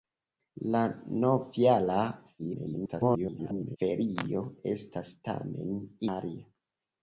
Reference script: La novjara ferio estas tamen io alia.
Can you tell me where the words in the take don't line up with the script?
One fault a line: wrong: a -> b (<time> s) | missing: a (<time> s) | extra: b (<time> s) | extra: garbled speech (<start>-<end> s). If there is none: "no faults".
extra: garbled speech (2.4-3.8 s)
missing: io (5.8 s)